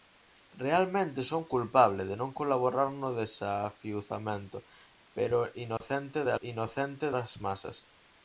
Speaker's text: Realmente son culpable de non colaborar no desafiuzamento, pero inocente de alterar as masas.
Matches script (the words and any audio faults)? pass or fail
fail